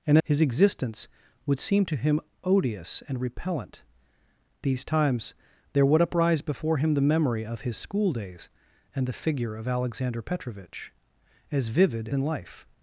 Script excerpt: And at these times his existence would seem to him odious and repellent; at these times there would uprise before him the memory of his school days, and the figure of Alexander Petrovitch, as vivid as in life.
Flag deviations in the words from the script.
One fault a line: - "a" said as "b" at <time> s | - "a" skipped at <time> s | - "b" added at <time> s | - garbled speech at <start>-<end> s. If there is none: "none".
- "at these times" skipped at 0.2 s
- "at" skipped at 3.8 s
- "as" skipped at 12.1 s